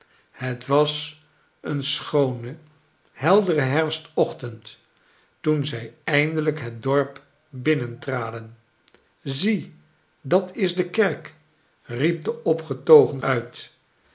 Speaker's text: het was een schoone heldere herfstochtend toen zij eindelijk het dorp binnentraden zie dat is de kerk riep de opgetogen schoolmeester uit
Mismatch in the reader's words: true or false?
true